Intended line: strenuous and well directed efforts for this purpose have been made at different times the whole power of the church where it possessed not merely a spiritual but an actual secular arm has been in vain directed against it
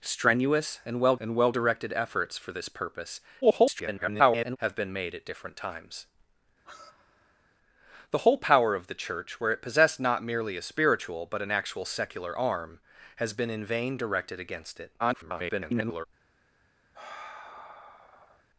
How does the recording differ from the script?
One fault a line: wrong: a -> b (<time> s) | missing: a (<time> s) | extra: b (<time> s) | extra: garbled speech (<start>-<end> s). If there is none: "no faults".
extra: and well (1.2 s)
extra: garbled speech (3.4-4.6 s)
extra: garbled speech (15.0-16.1 s)